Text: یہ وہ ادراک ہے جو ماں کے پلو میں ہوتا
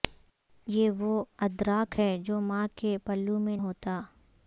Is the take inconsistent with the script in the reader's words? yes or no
no